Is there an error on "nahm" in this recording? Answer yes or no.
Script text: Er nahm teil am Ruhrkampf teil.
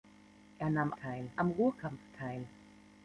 no